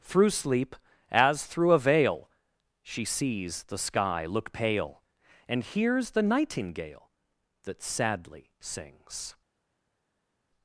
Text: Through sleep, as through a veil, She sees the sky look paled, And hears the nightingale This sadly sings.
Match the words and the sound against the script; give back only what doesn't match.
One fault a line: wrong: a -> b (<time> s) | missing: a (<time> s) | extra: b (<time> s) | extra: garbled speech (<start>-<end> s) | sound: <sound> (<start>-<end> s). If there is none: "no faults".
wrong: paled -> pale (4.5 s)
wrong: This -> That (7.6 s)